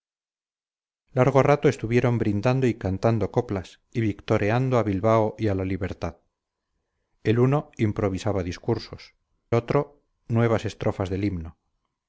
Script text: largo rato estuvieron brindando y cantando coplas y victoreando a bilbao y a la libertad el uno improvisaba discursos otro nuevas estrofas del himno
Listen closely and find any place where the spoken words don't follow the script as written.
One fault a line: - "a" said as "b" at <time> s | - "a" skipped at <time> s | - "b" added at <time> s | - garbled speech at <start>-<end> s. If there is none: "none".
none